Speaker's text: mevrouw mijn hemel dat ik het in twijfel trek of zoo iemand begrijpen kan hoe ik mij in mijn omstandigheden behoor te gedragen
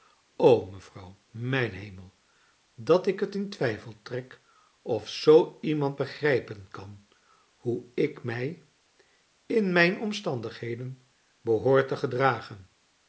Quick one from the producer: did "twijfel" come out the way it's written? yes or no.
yes